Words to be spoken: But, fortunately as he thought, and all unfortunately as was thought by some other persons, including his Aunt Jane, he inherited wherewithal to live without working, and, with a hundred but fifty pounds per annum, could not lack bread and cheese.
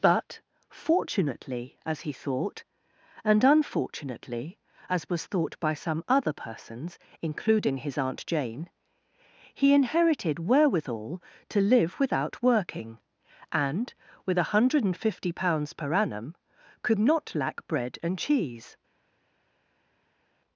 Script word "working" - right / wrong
right